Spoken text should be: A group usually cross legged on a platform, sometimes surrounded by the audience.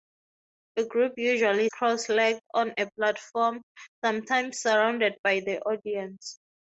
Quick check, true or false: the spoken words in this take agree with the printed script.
true